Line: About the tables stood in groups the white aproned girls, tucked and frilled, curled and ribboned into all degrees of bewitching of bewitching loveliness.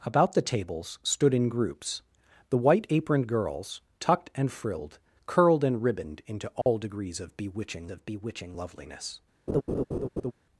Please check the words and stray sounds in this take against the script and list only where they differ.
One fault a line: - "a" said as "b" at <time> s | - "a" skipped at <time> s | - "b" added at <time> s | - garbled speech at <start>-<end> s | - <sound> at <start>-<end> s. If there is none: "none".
- dropout at 6.6-6.7 s
- laugh at 9.5-10.3 s